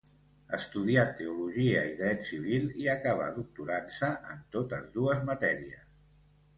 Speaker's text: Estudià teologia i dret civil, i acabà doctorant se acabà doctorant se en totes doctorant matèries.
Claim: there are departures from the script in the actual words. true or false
true